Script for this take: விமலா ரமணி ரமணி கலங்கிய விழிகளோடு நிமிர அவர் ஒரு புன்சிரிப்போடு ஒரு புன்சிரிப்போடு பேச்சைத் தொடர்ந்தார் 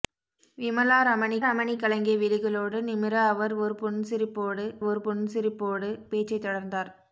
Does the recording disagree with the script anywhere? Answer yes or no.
no